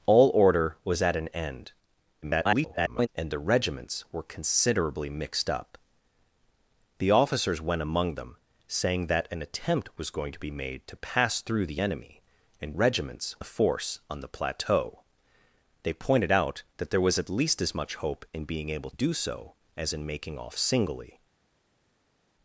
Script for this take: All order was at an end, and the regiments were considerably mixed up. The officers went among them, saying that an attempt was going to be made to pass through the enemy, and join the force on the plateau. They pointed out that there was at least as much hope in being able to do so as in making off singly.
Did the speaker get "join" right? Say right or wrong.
wrong